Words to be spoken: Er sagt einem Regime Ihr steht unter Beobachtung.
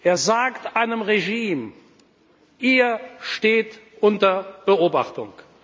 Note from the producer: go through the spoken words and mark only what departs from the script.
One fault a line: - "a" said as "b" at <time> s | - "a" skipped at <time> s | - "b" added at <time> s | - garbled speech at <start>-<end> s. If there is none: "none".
none